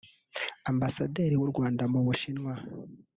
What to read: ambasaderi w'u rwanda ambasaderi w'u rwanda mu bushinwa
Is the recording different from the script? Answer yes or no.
yes